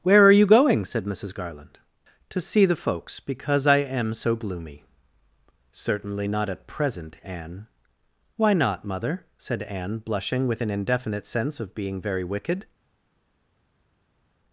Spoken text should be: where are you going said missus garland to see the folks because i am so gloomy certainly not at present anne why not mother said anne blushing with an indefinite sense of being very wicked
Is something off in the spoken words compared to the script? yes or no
no